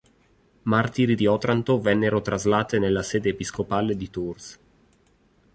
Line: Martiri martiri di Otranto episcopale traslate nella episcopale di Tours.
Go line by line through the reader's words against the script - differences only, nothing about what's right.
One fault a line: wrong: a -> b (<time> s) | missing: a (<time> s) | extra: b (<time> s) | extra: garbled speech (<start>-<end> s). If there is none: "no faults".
missing: martiri (1.1 s)
wrong: episcopale -> vennero (1.8 s)
extra: sede (3.0 s)